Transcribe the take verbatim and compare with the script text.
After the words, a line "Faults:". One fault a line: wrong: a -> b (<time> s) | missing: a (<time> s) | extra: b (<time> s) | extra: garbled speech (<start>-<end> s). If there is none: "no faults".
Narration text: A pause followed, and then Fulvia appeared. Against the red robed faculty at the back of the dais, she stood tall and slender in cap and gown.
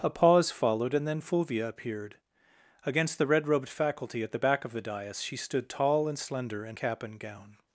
A pause followed, and then Fulvia appeared. Against the red robed faculty at the back of the dais, she stood tall and slender in cap and gown.
Faults:
no faults